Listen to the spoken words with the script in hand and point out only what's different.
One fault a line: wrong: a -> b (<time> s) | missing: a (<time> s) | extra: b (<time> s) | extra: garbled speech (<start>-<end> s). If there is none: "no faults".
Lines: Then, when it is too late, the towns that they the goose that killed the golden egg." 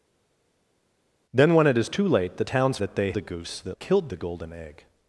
no faults